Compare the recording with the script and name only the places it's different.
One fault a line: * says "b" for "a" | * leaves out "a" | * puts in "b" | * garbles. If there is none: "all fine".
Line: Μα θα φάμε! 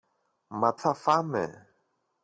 all fine